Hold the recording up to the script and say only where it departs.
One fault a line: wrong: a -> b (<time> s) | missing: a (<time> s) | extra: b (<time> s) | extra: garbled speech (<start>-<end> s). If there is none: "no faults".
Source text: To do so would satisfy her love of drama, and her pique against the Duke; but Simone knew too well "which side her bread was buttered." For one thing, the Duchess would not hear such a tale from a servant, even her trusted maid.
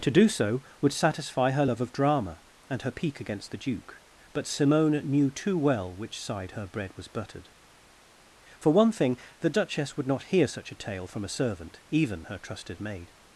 no faults